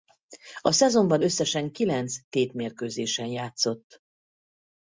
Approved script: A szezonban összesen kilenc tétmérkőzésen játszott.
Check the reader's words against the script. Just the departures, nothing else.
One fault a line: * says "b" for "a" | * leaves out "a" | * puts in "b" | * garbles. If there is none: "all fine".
all fine